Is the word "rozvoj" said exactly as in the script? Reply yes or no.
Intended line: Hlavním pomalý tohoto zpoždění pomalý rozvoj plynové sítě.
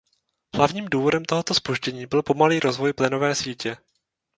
yes